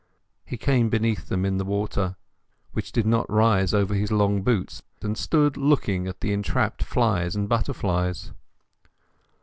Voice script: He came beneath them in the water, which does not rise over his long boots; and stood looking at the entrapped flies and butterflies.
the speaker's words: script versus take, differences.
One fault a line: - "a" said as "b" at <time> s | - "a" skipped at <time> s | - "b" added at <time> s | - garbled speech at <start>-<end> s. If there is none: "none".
- "does" said as "did" at 2.9 s